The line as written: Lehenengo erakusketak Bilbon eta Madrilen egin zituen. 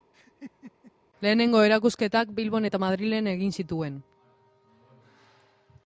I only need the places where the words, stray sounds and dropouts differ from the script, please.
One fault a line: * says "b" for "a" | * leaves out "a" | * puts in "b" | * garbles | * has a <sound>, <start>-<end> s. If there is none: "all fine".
* has a laugh, 0.1-0.9 s